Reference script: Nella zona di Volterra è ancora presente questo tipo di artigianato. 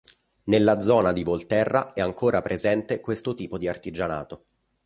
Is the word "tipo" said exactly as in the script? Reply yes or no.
yes